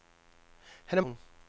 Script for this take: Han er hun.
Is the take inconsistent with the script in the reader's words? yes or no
no